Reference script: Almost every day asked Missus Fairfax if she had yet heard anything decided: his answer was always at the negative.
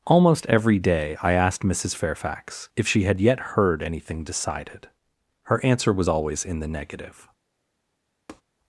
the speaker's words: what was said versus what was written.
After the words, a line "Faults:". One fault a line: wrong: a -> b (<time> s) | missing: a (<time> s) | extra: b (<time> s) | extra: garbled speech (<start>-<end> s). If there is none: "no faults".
Almost every day I asked Missus Fairfax if she had yet heard anything decided: her answer was always in the negative.
Faults:
extra: I (1.2 s)
wrong: his -> her (5.4 s)
wrong: at -> in (6.4 s)